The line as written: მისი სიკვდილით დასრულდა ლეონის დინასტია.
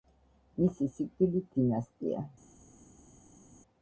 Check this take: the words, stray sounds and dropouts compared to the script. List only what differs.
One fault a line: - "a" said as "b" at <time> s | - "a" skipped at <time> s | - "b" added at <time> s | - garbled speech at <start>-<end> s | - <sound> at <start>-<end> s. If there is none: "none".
- "დასრულდა ლეონის" skipped at 1.5 s